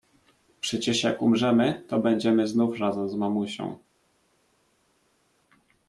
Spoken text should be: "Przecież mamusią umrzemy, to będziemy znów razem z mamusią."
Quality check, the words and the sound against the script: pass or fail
fail